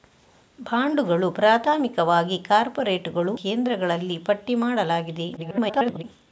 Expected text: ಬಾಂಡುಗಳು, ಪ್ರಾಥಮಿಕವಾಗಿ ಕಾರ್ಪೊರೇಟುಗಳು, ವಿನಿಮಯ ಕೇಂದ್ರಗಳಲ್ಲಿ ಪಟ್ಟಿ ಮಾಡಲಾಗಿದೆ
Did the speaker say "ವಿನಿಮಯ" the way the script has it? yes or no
no